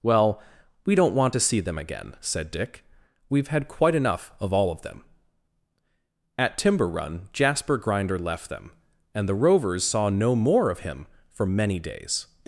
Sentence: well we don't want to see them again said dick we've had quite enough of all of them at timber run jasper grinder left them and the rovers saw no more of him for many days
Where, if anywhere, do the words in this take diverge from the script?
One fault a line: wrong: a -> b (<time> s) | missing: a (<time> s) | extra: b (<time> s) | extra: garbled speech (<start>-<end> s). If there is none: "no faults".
no faults